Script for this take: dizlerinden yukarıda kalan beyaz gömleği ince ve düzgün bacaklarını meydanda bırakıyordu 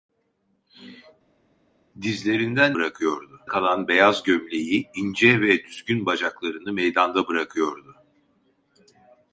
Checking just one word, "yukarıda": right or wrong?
wrong